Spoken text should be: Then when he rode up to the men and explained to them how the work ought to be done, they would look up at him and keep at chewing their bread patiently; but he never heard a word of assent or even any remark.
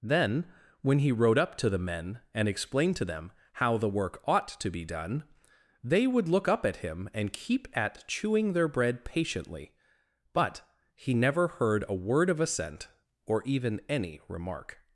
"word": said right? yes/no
yes